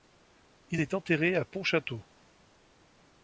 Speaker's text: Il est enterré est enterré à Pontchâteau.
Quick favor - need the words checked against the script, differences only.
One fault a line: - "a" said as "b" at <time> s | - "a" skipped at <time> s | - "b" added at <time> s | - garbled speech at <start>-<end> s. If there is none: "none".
- "est enterré" skipped at 1.4 s